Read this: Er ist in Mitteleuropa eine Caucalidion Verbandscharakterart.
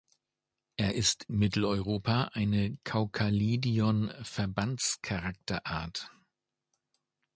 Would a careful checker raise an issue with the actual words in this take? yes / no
yes